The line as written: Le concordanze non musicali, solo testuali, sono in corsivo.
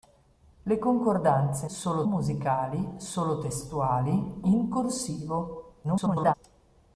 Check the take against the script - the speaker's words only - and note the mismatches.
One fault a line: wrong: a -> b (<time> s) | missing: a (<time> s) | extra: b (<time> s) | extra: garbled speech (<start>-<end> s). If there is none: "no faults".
wrong: non -> solo (1.6 s)
missing: sono (4.4 s)
extra: garbled speech (5.8-6.3 s)